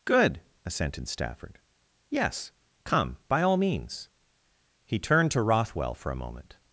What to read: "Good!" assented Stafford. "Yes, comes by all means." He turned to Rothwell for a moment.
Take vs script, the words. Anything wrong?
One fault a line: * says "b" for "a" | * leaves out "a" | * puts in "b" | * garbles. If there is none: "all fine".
* says "come" for "comes"